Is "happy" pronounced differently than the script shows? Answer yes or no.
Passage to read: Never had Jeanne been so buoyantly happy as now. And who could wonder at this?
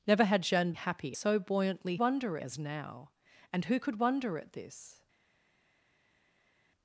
yes